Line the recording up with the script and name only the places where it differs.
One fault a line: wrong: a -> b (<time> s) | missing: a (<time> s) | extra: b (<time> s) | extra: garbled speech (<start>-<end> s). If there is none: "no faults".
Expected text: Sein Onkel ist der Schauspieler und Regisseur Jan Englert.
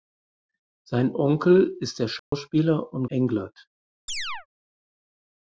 missing: Regisseur Jan (3.0 s)